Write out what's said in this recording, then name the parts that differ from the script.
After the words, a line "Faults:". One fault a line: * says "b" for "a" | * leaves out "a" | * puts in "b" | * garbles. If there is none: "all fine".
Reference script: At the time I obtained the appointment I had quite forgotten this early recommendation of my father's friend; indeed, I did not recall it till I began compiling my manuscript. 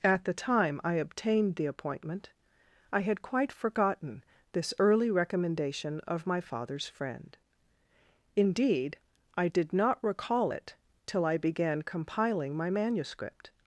At the time I obtained the appointment I had quite forgotten this early recommendation of my father's friend; indeed, I did not recall it till I began compiling my manuscript.
Faults:
all fine